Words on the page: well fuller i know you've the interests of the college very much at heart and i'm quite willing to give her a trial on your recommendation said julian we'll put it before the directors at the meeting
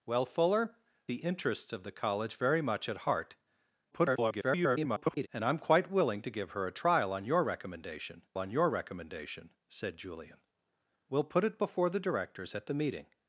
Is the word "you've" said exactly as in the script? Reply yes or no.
no